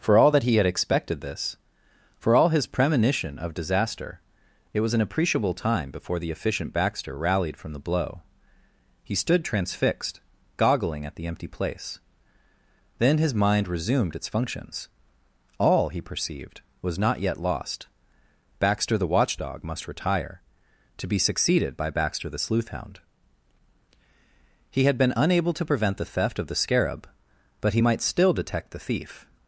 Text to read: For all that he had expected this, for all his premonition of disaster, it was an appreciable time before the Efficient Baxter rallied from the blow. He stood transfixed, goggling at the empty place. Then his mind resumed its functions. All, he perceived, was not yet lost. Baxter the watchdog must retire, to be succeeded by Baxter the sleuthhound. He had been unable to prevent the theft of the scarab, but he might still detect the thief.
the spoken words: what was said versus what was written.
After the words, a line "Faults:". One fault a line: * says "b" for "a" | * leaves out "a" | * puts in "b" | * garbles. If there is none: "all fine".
For all that he had expected this, for all his premonition of disaster, it was an appreciable time before the Efficient Baxter rallied from the blow. He stood transfixed, goggling at the empty place. Then his mind resumed its functions. All, he perceived, was not yet lost. Baxter the watchdog must retire, to be succeeded by Baxter the sleuthhound. He had been unable to prevent the theft of the scarab, but he might still detect the thief.
Faults:
all fine